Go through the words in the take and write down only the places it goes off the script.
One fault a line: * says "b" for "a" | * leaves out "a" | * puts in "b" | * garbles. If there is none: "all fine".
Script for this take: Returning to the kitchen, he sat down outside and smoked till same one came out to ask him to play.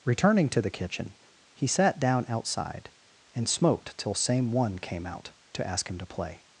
all fine